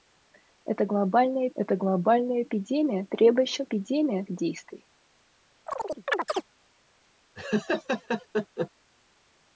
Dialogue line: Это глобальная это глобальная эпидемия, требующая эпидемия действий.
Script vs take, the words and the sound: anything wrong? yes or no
yes